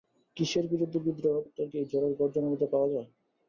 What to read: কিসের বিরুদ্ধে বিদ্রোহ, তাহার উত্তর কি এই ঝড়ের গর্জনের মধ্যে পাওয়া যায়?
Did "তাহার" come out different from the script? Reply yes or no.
yes